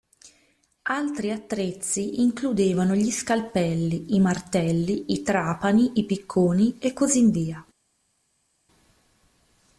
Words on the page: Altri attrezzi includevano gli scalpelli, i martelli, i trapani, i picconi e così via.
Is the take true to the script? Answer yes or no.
yes